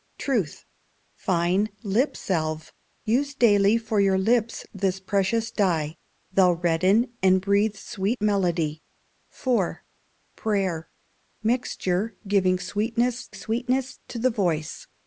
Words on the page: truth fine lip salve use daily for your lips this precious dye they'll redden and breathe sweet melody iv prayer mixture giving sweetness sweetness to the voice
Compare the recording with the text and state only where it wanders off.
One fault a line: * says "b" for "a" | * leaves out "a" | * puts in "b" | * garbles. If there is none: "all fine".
all fine